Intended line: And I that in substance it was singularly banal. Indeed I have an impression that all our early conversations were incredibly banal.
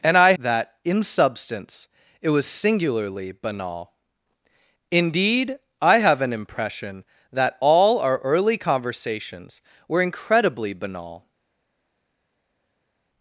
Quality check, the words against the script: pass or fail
pass